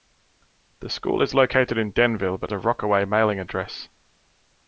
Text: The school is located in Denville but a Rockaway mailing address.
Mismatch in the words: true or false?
false